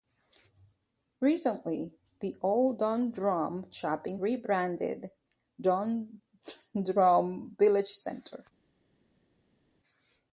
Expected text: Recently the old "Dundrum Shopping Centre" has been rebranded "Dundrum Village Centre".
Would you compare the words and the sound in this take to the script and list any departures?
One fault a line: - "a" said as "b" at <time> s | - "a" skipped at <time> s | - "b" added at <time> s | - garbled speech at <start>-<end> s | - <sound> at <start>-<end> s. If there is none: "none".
- "Centre has been" skipped at 4.2 s